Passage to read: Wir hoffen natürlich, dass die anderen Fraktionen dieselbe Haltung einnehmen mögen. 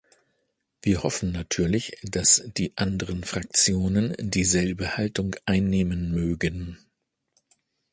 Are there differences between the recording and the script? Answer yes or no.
no